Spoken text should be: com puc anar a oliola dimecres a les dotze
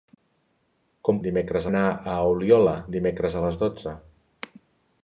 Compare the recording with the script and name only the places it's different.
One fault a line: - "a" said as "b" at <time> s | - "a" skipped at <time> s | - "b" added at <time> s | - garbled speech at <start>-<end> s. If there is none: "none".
- "puc" said as "dimecres" at 1.3 s